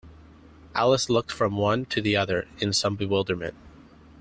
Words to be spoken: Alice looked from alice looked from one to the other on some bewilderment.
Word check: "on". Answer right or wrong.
wrong